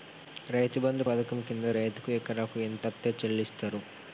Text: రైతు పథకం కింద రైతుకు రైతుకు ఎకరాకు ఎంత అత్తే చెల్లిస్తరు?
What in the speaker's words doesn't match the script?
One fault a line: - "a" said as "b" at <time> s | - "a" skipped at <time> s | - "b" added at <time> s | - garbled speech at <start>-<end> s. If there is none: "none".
- "బంధు" added at 0.8 s
- "రైతుకు" skipped at 2.1 s